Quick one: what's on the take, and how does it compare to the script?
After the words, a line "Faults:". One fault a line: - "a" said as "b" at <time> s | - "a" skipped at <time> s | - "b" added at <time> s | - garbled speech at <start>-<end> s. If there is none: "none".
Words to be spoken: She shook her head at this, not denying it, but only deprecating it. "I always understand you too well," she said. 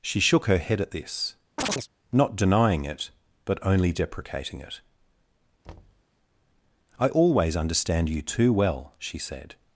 She shook her head at this, not denying it, but only deprecating it. "I always understand you too well," she said.
Faults:
none